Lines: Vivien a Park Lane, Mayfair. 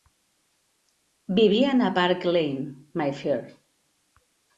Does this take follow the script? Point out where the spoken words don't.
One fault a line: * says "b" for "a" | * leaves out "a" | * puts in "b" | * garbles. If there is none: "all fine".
all fine